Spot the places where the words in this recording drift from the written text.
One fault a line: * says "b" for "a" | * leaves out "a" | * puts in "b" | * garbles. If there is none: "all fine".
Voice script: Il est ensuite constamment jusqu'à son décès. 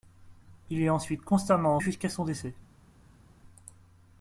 all fine